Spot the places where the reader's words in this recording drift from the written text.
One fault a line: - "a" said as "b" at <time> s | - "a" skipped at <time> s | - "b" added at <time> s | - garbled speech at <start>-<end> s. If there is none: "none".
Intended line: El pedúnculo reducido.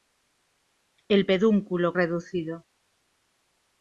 none